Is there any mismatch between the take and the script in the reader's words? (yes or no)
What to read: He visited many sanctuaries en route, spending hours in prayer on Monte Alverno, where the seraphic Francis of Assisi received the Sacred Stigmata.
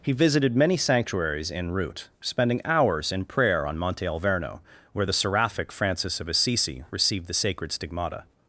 no